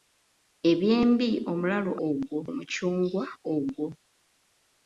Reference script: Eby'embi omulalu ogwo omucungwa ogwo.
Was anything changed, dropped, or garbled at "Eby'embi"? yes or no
no